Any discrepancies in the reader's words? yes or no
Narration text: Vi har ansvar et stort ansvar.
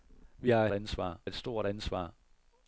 no